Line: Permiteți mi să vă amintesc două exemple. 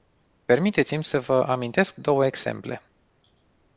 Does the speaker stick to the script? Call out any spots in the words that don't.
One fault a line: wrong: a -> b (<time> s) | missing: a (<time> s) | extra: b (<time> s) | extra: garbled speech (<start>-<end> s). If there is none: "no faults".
no faults